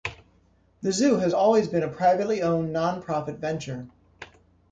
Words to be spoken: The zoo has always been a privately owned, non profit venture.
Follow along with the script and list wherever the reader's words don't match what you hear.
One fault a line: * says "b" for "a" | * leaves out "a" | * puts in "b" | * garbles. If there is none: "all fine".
all fine